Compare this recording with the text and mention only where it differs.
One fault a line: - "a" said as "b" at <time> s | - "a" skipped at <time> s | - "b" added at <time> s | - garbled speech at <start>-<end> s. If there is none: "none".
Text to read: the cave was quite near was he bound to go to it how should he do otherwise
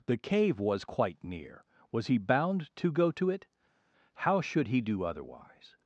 none